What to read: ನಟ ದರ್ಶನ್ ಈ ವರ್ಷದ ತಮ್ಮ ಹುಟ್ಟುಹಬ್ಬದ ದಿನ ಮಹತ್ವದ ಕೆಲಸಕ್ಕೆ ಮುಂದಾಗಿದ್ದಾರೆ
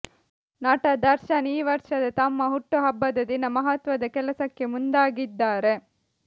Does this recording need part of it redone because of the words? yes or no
no